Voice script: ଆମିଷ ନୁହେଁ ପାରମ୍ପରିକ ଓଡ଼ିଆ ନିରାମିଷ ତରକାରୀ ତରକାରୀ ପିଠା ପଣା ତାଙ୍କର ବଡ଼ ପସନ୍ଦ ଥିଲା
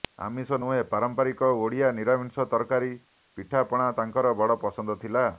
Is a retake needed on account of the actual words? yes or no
yes